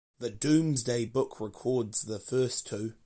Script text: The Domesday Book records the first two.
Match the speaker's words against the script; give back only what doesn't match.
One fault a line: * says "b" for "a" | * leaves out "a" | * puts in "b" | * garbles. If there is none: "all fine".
all fine